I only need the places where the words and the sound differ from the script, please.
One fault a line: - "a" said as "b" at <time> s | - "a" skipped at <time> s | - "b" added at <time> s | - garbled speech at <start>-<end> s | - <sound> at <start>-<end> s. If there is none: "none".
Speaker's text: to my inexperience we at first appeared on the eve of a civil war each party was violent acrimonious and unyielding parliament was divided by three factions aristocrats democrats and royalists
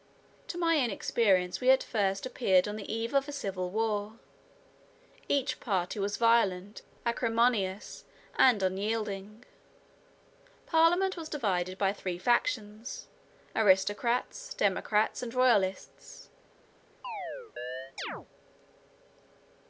- chirp at 17.0-18.3 s